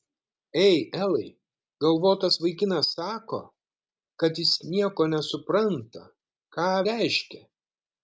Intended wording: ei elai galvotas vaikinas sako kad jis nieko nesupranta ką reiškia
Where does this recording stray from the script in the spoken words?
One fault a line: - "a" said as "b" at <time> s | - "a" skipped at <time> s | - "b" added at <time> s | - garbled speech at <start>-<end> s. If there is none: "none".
none